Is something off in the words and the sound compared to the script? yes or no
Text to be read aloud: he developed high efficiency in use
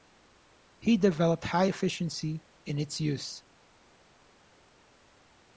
yes